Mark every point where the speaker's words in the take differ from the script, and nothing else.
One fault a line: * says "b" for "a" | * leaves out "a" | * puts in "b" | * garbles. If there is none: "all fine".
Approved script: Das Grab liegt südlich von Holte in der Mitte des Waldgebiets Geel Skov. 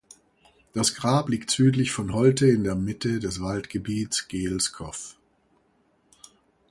all fine